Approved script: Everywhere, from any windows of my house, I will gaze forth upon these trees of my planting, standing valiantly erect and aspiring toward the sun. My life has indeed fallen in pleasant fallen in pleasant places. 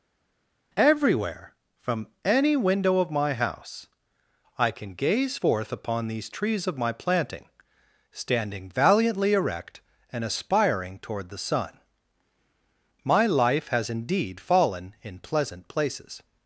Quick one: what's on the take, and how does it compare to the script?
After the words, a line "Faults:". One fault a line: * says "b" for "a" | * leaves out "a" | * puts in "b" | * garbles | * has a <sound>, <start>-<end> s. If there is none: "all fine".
Everywhere, from any window of my house, I can gaze forth upon these trees of my planting, standing valiantly erect and aspiring toward the sun. My life has indeed fallen in pleasant places.
Faults:
* says "window" for "windows"
* says "can" for "will"
* leaves out "fallen in pleasant"